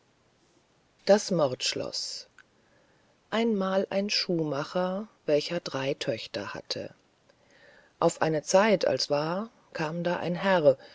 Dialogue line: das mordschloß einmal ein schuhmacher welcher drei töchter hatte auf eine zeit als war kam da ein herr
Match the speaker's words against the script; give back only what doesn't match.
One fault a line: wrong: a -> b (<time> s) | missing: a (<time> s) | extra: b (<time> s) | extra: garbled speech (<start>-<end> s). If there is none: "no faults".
no faults